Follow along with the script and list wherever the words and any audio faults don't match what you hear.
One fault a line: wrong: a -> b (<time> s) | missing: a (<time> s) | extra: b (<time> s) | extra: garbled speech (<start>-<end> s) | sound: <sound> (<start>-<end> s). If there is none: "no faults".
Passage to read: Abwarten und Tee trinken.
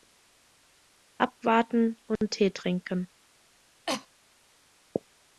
sound: cough (3.9-4.1 s)